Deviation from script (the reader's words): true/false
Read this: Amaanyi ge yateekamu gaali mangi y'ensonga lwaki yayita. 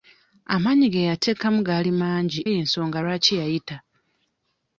false